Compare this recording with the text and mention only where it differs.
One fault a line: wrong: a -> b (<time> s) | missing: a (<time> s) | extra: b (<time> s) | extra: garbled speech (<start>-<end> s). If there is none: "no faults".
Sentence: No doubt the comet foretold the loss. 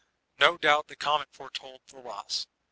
no faults